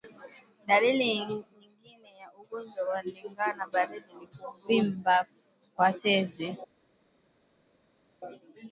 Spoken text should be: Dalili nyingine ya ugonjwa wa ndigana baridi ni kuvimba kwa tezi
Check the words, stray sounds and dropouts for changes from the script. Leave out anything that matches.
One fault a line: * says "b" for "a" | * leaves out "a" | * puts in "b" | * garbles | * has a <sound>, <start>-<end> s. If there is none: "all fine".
all fine